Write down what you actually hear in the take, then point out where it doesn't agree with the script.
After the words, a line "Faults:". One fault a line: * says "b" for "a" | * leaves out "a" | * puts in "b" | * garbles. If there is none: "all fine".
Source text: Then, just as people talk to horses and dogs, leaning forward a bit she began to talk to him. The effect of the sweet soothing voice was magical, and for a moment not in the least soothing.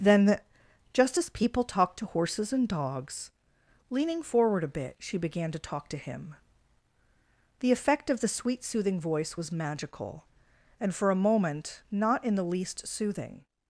Then, just as people talk to horses and dogs, leaning forward a bit she began to talk to him. The effect of the sweet soothing voice was magical, and for a moment not in the least soothing.
Faults:
all fine